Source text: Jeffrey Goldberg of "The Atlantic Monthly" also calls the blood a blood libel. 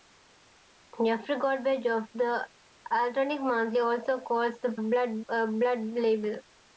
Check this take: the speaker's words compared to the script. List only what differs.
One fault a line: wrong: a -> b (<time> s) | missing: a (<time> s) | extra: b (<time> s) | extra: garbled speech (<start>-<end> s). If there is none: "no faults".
no faults